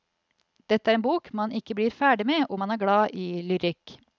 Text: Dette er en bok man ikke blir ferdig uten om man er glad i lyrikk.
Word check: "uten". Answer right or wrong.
wrong